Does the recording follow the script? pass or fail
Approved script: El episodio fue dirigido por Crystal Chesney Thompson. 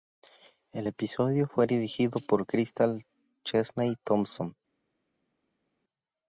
pass